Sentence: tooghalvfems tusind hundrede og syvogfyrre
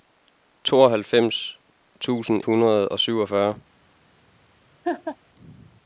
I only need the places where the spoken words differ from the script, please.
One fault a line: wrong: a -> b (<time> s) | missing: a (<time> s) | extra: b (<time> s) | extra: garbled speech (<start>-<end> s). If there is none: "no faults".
no faults